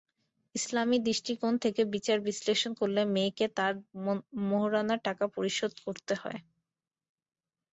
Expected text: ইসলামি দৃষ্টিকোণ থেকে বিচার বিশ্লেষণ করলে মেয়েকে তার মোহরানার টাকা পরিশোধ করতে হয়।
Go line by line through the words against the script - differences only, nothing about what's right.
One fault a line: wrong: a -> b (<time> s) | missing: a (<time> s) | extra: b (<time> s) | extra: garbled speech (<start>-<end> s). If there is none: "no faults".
no faults